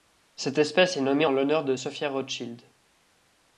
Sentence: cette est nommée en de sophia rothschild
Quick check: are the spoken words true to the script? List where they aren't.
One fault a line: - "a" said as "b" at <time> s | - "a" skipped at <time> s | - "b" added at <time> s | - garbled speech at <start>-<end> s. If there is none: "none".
- "espèce" added at 0.6 s
- "l'honneur" added at 1.3 s